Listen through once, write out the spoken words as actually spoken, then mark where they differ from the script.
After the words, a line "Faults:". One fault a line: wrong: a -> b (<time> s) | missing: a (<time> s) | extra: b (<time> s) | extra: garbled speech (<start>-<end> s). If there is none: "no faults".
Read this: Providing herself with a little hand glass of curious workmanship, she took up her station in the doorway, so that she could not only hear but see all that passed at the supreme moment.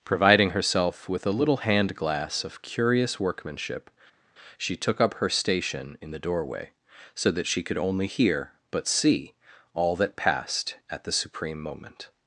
Providing herself with a little hand glass of curious workmanship, she took up her station in the doorway, so that she could only hear but see all that passed at the supreme moment.
Faults:
missing: not (7.8 s)